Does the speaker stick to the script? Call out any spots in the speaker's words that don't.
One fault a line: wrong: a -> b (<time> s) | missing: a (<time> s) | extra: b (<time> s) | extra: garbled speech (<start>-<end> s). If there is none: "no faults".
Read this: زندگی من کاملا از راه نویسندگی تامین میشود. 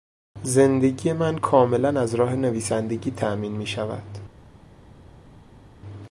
no faults